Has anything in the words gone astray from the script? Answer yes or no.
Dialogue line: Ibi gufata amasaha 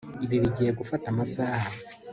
yes